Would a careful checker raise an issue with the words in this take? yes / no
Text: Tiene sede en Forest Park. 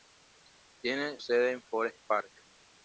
no